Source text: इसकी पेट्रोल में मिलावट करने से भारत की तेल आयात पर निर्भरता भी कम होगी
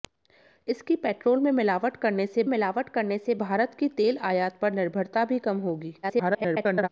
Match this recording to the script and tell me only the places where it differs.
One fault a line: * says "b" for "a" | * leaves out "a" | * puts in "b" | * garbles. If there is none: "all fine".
* puts in "मिलावट करने से"
* garbles